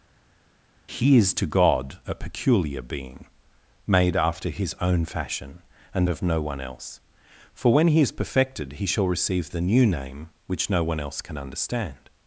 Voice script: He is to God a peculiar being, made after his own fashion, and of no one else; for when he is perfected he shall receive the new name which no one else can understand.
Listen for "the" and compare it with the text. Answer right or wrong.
right